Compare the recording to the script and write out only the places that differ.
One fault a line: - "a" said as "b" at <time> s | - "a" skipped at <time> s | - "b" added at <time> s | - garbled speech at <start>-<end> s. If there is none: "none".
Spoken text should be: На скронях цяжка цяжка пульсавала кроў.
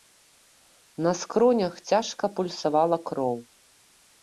- "цяжка" skipped at 2.3 s